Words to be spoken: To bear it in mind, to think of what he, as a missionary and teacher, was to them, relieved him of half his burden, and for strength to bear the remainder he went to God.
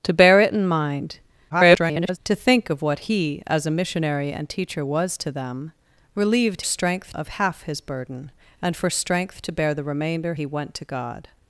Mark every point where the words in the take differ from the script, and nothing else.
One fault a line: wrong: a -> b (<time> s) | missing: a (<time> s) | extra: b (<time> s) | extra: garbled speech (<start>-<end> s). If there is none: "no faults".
extra: garbled speech (1.5-2.2 s)
wrong: him -> strength (6.6 s)